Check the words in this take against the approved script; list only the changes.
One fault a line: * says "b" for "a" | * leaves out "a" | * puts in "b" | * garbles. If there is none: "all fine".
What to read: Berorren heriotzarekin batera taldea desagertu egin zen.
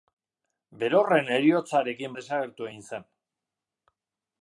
* leaves out "batera taldea"